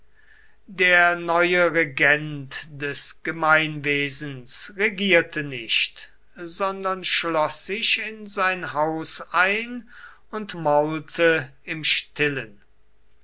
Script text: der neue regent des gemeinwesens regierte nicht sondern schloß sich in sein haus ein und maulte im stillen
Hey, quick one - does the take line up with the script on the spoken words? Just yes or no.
yes